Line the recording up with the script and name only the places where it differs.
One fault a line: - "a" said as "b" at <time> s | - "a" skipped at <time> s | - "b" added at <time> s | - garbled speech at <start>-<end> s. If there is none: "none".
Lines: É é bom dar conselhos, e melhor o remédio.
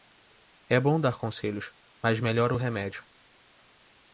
- "é" skipped at 0.8 s
- "e" said as "mas" at 2.0 s